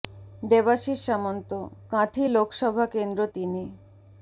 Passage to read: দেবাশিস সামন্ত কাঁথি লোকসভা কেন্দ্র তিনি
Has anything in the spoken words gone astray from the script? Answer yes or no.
no